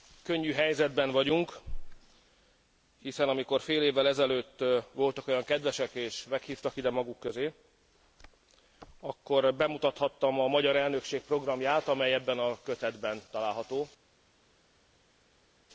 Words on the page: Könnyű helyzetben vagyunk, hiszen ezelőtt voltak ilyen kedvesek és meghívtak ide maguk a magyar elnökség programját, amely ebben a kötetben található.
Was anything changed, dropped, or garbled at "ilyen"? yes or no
yes